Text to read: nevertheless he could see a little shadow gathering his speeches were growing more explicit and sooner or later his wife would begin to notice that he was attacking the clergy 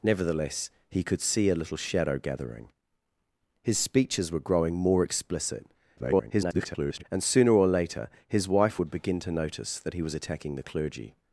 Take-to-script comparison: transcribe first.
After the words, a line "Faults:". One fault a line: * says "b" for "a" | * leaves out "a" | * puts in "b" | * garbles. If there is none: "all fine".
nevertheless he could see a little shadow gathering his speeches were growing more explicit [garbled] and sooner or later his wife would begin to notice that he was attacking the clergy
Faults:
* garbles